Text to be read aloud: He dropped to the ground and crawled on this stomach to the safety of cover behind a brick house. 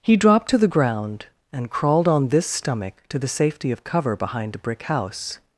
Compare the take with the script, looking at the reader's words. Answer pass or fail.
pass